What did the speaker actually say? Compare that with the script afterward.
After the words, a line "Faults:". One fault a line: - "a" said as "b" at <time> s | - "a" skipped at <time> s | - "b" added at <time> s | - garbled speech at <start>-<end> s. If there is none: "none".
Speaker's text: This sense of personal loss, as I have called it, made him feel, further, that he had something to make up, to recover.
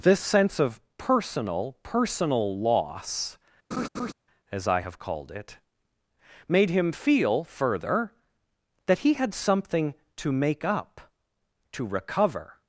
This sense of personal personal loss, as I have called it, made him feel, further, that he had something to make up, to recover.
Faults:
- "personal" added at 1.8 s